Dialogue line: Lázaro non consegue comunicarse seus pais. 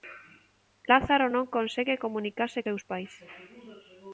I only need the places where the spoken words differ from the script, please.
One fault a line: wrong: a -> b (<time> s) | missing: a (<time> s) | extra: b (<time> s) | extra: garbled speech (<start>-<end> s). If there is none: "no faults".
no faults